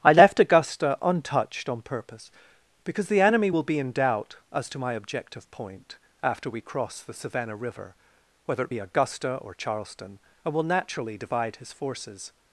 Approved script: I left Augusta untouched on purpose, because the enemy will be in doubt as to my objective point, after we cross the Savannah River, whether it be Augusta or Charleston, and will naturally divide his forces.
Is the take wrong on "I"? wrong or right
right